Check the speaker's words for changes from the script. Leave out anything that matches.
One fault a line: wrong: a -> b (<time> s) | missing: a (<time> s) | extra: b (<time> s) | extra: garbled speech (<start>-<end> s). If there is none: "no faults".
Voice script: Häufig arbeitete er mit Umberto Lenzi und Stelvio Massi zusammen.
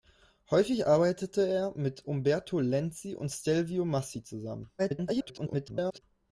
extra: garbled speech (4.8-6.0 s)